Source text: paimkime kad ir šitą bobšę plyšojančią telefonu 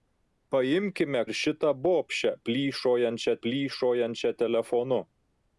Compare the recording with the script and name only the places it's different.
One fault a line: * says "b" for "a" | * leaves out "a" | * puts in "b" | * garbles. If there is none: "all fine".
* leaves out "kad"
* puts in "plyšojančią"